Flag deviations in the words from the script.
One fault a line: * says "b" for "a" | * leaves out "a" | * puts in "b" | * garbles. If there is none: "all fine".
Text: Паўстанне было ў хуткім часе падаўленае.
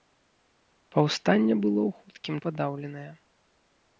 * leaves out "часе"